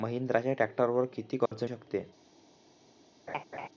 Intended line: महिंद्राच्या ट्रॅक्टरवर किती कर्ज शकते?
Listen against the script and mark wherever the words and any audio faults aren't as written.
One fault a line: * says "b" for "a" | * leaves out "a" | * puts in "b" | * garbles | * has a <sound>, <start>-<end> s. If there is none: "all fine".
* has a dropout, 1.5-1.5 s
* has a laugh, 3.3-3.7 s